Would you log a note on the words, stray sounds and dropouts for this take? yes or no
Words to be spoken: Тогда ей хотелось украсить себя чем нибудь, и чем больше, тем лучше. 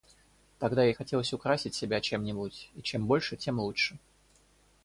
no